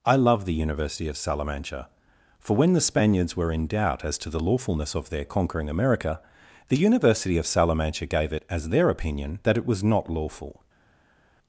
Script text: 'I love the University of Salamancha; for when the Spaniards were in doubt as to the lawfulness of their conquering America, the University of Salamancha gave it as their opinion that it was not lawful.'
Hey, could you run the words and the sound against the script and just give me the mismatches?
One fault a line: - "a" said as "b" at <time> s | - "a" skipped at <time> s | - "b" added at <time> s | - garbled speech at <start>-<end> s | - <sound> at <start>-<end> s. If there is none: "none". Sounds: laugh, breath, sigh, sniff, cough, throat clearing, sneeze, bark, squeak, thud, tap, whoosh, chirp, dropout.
none